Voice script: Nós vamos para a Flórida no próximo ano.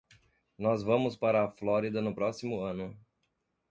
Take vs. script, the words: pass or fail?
pass